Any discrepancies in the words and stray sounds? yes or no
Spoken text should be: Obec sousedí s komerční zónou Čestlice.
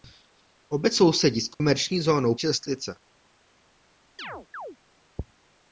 yes